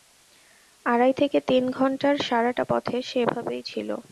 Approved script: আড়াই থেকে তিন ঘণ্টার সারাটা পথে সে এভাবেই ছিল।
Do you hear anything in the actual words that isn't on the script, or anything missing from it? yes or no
no